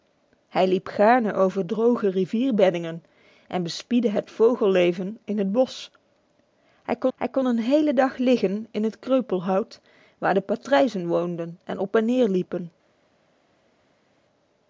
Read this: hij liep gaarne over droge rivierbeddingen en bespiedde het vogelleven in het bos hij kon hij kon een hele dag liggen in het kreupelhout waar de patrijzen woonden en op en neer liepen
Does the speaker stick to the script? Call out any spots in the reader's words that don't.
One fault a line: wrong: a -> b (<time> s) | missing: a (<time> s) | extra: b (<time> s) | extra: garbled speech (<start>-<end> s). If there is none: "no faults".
no faults